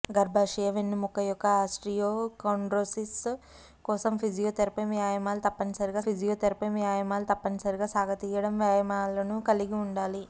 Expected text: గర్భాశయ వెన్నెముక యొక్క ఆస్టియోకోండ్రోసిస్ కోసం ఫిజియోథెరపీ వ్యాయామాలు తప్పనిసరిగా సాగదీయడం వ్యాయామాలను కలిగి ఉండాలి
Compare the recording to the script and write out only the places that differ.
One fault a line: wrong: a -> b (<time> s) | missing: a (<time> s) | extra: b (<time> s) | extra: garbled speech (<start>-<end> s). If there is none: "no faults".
extra: ఫిజియోథెరపీ వ్యాయామాలు తప్పనిసరిగా (6.0 s)